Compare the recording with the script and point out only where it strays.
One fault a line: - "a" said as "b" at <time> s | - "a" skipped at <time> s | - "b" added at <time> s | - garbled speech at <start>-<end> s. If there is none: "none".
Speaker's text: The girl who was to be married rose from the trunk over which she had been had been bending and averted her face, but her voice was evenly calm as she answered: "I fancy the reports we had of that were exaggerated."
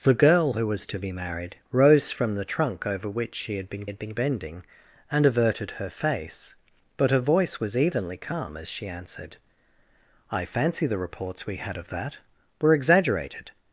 none